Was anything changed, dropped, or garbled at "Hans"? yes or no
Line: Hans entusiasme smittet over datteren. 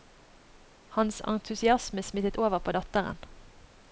no